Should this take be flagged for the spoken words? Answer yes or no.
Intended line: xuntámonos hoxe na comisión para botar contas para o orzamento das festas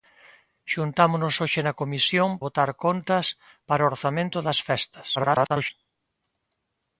yes